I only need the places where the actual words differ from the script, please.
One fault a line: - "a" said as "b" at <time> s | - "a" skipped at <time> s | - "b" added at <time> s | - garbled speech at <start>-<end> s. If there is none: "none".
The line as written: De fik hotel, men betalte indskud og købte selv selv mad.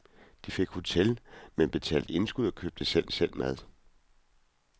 none